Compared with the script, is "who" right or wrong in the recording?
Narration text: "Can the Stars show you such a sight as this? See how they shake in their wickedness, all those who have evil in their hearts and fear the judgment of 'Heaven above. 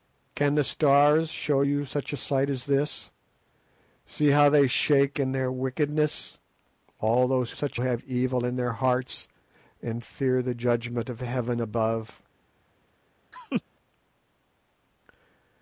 wrong